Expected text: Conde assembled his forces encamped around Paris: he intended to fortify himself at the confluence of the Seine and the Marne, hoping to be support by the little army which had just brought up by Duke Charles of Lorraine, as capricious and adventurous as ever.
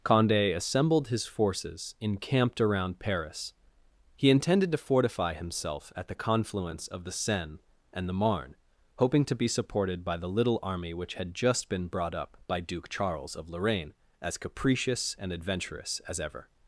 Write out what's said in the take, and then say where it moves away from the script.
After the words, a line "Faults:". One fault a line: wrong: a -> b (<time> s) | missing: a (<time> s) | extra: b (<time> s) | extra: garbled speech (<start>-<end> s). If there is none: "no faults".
Conde assembled his forces encamped around Paris: he intended to fortify himself at the confluence of the Seine and the Marne, hoping to be supported by the little army which had just been brought up by Duke Charles of Lorraine, as capricious and adventurous as ever.
Faults:
wrong: support -> supported (9.5 s)
extra: been (11.7 s)